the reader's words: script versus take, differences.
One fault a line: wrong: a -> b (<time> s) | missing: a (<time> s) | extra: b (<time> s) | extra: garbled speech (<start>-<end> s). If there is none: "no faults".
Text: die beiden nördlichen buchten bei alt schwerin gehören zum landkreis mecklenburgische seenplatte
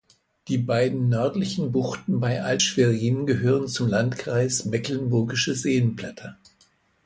no faults